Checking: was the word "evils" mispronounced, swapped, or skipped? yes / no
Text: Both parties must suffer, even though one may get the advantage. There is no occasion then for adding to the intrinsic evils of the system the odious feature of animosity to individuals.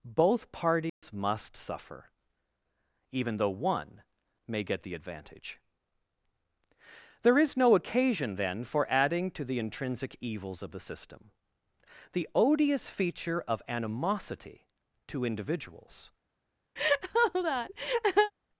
no